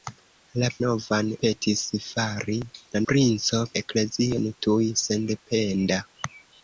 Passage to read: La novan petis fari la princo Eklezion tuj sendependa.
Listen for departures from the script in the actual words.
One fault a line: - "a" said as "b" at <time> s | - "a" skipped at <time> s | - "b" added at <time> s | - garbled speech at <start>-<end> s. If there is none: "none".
none